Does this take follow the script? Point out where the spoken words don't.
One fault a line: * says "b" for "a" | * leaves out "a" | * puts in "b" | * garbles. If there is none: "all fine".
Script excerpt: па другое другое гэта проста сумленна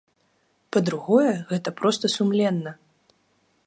* leaves out "другое"